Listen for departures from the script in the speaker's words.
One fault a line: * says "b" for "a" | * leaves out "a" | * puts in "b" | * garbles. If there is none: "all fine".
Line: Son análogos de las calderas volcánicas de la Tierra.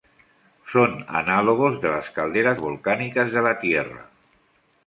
all fine